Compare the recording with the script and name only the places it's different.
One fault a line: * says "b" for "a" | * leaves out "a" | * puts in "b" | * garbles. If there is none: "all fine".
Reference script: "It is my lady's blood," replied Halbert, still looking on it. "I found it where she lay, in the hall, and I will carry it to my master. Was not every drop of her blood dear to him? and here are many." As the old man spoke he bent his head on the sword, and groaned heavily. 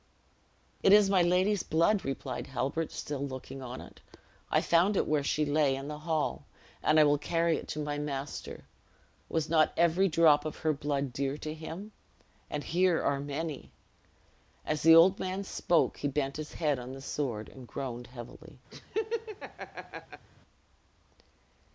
all fine